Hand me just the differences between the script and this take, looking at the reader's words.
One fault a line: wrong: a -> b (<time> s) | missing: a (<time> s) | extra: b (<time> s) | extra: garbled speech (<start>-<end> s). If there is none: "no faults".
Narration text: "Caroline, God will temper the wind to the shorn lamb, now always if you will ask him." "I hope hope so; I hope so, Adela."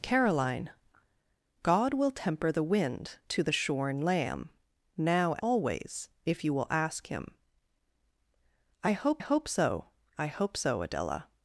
no faults